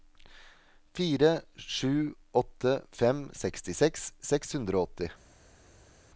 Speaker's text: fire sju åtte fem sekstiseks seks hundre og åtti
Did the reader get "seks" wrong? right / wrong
right